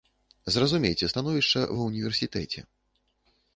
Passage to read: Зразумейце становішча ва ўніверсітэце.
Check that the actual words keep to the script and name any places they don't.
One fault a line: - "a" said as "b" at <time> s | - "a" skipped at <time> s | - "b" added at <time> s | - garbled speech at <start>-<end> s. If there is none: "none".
none